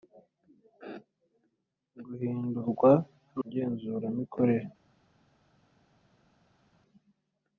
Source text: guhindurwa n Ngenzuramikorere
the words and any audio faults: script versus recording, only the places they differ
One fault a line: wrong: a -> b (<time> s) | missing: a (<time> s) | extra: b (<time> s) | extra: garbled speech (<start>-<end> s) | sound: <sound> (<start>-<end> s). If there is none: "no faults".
no faults